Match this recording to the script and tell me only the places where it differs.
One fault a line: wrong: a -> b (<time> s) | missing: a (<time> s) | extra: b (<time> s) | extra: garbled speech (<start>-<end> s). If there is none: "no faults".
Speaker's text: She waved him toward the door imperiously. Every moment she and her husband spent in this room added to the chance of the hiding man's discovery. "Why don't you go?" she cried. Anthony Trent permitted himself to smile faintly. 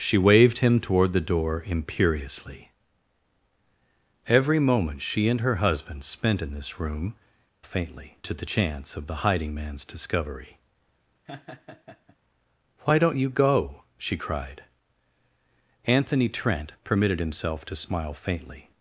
wrong: added -> faintly (7.6 s)